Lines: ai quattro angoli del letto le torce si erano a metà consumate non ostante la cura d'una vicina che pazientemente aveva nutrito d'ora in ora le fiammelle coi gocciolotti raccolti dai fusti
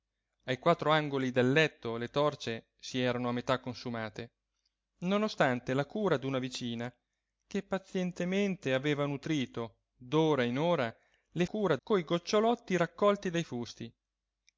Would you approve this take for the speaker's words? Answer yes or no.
no